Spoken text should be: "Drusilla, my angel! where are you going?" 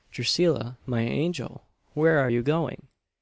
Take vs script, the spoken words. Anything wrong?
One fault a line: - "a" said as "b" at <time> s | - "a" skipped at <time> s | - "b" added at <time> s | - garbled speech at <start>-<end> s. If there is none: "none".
none